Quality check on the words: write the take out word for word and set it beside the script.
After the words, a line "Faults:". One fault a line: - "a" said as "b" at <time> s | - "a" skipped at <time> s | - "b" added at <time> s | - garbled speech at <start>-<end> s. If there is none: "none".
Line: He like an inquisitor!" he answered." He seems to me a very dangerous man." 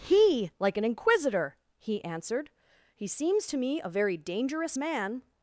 He like an inquisitor!" he answered." He seems to me a very dangerous man."
Faults:
none